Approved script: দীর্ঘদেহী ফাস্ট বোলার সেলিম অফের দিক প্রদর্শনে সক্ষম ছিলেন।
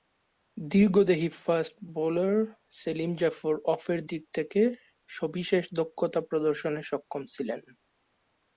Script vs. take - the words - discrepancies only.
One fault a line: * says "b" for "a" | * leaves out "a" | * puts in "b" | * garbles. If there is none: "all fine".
* puts in "জাফর"
* puts in "থেকে সবিশেষ দক্ষতা"